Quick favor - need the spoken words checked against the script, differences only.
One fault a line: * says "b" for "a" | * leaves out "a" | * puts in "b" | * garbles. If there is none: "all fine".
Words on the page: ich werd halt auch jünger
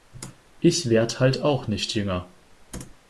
* puts in "nicht"